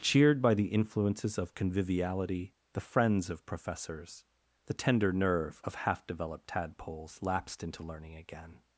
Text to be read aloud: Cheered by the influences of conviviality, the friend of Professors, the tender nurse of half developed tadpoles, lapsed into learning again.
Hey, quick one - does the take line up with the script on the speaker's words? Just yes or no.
no